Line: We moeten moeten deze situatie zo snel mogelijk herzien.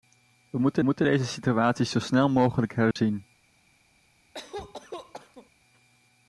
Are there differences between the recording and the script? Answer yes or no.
no